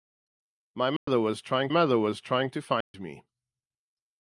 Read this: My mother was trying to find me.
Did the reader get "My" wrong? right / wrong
right